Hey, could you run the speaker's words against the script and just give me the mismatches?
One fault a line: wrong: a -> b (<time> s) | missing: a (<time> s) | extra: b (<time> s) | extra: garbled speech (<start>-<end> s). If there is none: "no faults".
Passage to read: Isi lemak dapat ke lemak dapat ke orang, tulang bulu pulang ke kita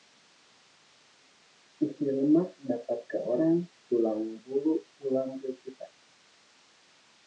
missing: lemak dapat ke (3.2 s)